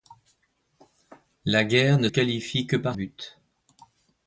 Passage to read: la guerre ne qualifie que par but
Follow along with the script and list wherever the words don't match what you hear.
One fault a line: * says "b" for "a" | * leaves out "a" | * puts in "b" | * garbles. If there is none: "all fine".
all fine